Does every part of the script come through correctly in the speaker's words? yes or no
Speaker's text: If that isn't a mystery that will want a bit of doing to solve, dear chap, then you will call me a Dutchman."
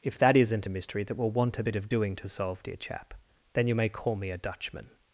no